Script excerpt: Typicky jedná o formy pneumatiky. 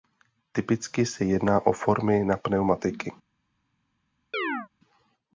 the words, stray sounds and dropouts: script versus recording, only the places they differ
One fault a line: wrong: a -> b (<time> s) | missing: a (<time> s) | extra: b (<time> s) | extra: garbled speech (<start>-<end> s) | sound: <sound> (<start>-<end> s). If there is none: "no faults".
extra: se (1.1 s)
extra: na (2.2 s)
sound: chirp (4.3-4.7 s)